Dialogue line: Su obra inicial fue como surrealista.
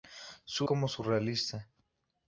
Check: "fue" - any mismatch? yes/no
yes